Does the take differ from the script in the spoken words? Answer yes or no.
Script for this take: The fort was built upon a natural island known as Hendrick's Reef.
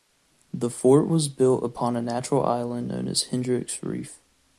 no